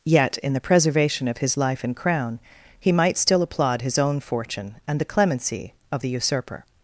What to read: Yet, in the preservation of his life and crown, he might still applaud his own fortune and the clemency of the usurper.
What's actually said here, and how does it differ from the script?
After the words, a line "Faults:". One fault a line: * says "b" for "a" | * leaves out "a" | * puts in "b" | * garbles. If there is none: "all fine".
Yet, in the preservation of his life and crown, he might still applaud his own fortune and the clemency of the usurper.
Faults:
all fine